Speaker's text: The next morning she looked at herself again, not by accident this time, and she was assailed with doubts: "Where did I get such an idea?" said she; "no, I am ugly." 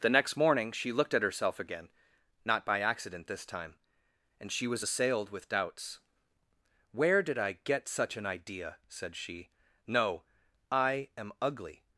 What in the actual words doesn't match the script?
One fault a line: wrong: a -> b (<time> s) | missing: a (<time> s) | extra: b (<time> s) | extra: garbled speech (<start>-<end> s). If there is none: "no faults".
no faults